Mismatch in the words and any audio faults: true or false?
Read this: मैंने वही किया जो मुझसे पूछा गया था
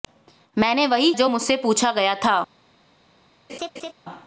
true